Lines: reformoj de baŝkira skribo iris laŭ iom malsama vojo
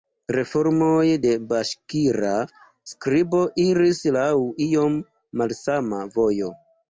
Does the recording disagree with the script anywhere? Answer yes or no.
no